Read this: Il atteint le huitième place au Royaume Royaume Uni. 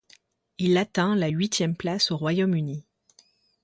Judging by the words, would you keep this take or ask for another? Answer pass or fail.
fail